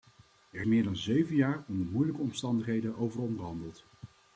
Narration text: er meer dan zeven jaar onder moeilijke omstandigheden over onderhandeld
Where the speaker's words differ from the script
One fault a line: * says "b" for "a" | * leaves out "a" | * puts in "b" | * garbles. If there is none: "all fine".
all fine